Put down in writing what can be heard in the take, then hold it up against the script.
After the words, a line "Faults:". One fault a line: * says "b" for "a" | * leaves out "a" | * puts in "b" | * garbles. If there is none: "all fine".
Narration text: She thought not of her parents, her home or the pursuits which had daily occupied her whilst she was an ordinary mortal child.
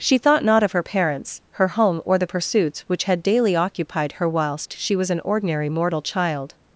She thought not of her parents, her home or the pursuits which had daily occupied her whilst she was an ordinary mortal child.
Faults:
all fine